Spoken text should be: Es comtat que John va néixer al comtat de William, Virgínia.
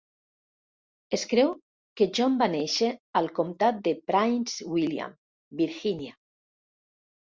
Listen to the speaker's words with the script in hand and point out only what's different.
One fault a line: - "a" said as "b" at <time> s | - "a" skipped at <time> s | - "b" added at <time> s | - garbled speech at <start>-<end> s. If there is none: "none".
- "comtat" said as "creu" at 1.3 s
- "Prince" added at 4.1 s